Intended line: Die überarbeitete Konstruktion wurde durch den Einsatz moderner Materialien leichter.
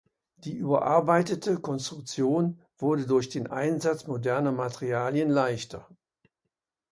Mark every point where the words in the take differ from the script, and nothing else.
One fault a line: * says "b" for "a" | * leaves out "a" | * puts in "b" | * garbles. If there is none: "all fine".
all fine